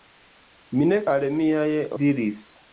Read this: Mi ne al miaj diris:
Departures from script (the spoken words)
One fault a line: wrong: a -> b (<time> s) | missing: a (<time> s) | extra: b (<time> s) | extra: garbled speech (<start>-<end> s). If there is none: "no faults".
no faults